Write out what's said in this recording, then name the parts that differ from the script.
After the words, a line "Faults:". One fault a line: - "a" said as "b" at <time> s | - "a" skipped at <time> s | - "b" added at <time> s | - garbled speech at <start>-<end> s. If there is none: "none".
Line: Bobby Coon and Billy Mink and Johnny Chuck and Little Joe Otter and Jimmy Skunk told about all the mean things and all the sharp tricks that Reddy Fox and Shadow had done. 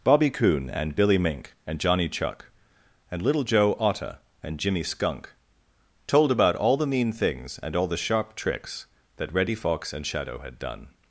Bobby Coon and Billy Mink and Johnny Chuck and Little Joe Otter and Jimmy Skunk told about all the mean things and all the sharp tricks that Reddy Fox and Shadow had done.
Faults:
none